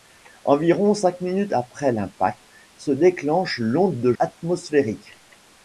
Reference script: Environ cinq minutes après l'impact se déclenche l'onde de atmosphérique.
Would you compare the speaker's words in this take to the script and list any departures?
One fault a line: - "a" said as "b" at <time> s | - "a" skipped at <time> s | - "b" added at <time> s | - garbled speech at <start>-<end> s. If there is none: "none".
none